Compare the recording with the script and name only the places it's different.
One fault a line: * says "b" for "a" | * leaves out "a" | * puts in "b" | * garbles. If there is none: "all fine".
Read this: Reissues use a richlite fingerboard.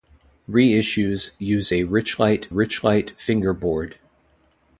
* puts in "richlite"